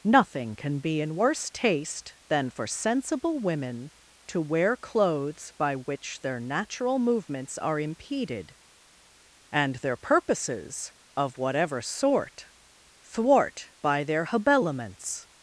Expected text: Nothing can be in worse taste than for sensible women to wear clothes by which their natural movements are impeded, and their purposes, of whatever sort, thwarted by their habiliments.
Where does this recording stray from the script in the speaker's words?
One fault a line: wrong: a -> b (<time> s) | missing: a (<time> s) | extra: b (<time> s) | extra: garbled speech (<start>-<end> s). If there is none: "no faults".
wrong: thwarted -> thwart (13.0 s)